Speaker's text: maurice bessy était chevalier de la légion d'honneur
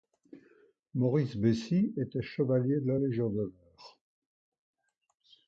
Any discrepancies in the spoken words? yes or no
no